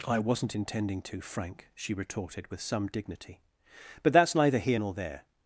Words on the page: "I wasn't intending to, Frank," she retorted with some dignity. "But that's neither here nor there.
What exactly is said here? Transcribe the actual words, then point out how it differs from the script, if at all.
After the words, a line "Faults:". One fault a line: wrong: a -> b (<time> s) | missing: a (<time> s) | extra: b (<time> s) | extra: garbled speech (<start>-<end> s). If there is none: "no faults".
"I wasn't intending to, Frank," she retorted with some dignity. "But that's neither here nor there.
Faults:
no faults